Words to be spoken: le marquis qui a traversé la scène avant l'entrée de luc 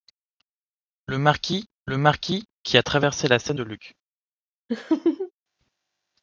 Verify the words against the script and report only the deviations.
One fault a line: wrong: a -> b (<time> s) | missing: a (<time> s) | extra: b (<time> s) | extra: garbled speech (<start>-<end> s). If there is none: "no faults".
extra: le marquis (1.8 s)
missing: avant l'entrée (3.6 s)